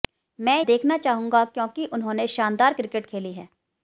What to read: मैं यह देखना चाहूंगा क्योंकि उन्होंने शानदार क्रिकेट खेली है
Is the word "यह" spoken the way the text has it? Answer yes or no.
no